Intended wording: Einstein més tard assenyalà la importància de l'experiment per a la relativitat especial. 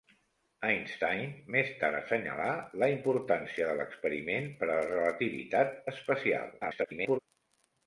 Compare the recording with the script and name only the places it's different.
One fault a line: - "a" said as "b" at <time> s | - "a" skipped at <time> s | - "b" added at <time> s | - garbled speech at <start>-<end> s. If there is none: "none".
- garbled speech at 6.6-7.2 s